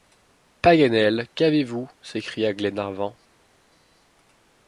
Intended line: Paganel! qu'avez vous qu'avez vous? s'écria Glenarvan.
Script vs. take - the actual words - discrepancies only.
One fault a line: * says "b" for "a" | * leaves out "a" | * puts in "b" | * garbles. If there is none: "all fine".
* leaves out "qu'avez vous"